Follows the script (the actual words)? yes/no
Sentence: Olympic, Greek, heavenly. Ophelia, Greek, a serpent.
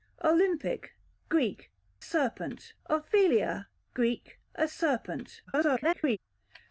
no